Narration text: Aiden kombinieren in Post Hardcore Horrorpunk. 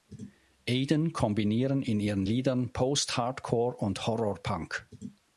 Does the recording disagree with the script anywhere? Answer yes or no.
yes